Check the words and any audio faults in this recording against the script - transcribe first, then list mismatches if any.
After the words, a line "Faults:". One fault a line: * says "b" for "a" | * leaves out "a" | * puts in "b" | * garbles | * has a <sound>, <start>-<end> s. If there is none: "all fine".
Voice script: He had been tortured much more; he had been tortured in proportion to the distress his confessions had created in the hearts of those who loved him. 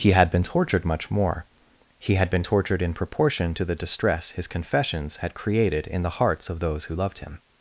He had been tortured much more; he had been tortured in proportion to the distress his confessions had created in the hearts of those who loved him.
Faults:
all fine